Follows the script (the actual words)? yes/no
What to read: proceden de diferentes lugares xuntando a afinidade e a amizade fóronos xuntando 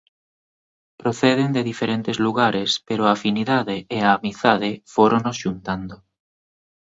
no